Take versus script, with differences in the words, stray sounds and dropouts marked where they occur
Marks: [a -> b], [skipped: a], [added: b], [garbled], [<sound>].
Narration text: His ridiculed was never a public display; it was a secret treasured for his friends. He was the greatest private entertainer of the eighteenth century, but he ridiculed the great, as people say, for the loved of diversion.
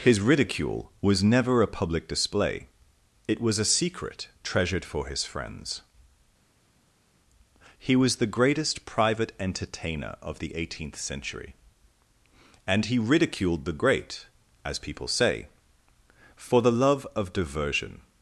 His [ridiculed -> ridicule] was never a public display; it was a secret treasured for his friends. He was the greatest private entertainer of the eighteenth century, [but -> and] he ridiculed the great, as people say, for the [loved -> love] of diversion.